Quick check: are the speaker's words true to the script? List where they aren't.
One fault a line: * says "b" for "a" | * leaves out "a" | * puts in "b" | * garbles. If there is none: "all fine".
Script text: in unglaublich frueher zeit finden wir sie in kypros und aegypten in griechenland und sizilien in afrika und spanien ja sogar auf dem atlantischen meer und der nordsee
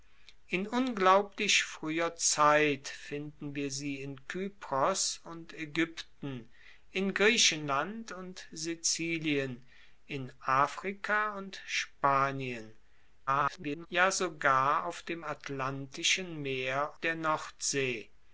* garbles
* leaves out "und"